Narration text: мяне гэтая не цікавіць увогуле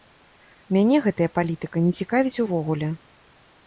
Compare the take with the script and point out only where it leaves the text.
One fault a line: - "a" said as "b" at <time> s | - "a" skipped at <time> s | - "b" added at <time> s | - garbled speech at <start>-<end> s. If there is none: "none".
- "палітыка" added at 1.4 s